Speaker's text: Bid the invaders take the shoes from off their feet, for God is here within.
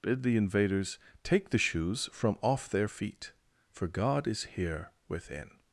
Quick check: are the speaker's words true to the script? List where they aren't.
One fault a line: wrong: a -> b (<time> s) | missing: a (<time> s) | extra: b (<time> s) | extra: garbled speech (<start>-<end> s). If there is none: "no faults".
no faults